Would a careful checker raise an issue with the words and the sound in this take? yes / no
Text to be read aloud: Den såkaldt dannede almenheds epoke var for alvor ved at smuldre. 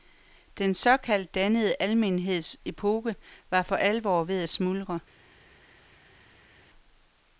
no